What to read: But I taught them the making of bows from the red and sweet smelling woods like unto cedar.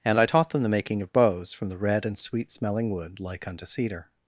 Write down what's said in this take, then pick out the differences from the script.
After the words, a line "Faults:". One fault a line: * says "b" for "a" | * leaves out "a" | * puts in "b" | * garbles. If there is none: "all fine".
And I taught them the making of bows from the red and sweet smelling wood like unto cedar.
Faults:
* says "And" for "But"
* says "wood" for "woods"